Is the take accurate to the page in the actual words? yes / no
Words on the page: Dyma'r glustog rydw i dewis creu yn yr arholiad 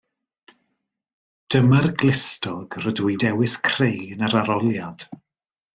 yes